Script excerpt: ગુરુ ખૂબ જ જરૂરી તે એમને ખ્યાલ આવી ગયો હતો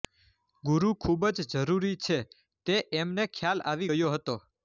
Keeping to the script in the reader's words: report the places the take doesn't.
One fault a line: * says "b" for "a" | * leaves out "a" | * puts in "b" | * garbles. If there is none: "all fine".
* puts in "છે"